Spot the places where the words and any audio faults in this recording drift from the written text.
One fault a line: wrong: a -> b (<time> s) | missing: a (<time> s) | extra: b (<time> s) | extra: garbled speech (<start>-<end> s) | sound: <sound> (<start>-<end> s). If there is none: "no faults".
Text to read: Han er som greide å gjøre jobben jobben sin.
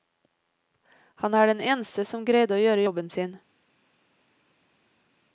extra: den eneste (1.5 s)
missing: jobben (3.1 s)